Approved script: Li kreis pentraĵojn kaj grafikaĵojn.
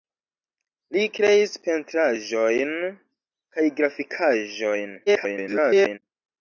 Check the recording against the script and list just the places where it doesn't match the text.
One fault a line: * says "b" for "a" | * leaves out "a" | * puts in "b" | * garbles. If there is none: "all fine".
* garbles